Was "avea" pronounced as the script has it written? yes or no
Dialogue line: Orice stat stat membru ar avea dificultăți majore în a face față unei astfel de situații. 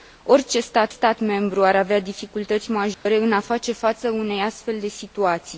yes